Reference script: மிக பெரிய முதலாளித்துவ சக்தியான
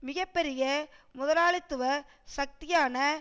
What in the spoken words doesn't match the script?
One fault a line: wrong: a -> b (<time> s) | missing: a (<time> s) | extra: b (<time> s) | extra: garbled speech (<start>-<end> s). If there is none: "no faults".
no faults